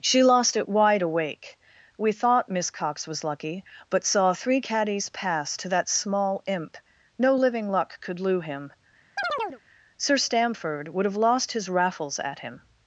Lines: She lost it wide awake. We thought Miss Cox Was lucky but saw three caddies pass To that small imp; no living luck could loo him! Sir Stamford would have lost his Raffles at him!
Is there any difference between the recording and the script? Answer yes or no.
no